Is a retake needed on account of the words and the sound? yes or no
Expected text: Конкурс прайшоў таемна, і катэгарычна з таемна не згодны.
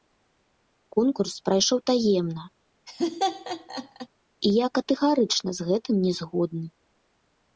yes